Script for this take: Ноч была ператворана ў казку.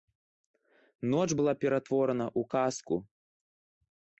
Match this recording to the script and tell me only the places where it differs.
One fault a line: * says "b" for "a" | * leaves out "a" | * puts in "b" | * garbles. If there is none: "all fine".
all fine